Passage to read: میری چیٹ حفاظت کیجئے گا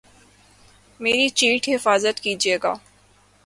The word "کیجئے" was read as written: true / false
true